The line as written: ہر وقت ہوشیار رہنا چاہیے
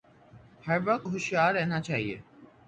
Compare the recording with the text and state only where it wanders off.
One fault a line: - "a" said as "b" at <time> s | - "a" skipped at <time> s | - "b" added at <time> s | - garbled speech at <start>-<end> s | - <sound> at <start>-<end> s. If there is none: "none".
none